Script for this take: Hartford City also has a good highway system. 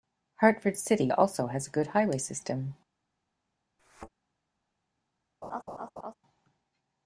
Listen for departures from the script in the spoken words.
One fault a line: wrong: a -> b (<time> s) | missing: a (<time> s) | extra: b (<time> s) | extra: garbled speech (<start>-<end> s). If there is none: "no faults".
no faults